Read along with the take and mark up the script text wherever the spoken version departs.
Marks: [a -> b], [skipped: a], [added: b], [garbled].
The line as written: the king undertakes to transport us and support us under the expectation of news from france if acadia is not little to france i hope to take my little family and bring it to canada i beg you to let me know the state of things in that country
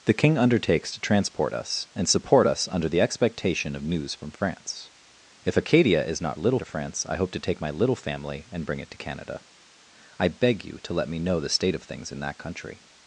the king undertakes to transport us and support us under the expectation of news from france if acadia is not little to france i hope to take my little family and bring it to canada i beg you to let me know the state of things in that country